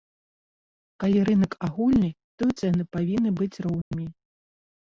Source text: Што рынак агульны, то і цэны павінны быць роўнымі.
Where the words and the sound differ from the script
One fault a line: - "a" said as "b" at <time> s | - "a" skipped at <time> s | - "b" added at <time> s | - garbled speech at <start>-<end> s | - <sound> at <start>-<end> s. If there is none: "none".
- "Што" said as "Калі" at 1.0 s
- dropout at 3.8-3.9 s